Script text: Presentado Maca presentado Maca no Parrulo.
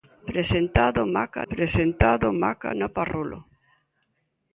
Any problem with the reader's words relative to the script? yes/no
no